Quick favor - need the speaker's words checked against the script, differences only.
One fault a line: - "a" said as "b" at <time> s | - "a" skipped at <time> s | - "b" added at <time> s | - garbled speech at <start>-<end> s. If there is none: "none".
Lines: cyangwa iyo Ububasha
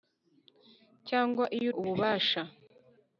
none